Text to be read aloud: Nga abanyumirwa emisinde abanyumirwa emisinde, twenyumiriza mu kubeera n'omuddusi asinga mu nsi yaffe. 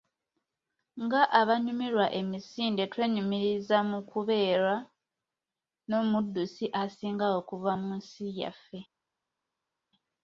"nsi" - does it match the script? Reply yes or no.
yes